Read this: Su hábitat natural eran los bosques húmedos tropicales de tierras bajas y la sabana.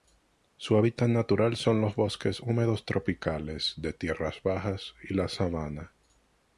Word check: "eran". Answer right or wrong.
wrong